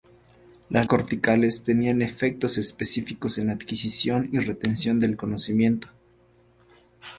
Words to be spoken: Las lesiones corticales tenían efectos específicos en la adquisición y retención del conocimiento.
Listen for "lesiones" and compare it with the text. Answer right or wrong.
wrong